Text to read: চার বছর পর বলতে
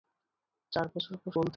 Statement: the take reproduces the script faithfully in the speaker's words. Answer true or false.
true